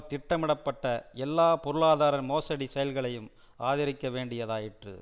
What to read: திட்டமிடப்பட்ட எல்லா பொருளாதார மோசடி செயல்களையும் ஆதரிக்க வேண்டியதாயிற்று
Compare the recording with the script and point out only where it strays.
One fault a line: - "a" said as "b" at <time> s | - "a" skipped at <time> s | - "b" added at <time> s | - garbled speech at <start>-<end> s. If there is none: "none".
none